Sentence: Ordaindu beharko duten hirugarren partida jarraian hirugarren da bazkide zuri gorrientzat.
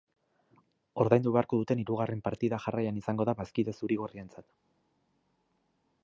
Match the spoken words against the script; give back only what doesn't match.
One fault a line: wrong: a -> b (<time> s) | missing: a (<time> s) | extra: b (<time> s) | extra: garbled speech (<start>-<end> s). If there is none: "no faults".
wrong: hirugarren -> izango (3.0 s)